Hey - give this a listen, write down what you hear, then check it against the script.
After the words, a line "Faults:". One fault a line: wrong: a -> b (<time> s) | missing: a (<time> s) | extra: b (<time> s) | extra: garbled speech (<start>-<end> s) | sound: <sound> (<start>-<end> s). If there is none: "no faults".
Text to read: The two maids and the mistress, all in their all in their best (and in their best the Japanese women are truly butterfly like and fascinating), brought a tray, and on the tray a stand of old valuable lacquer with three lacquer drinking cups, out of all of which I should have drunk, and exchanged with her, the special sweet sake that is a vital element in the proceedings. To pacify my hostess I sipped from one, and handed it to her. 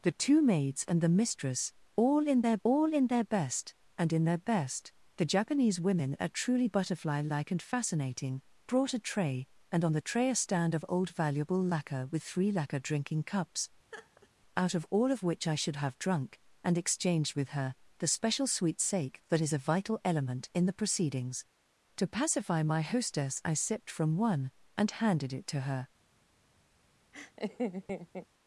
The two maids and the mistress, all in their all in their best (and in their best the Japanese women are truly butterfly like and fascinating), brought a tray, and on the tray a stand of old valuable lacquer with three lacquer drinking cups, out of all of which I should have drunk, and exchanged with her, the special sweet sake that is a vital element in the proceedings. To pacify my hostess I sipped from one, and handed it to her.
Faults:
sound: laugh (13.9-14.3 s)
sound: laugh (27.1-28.3 s)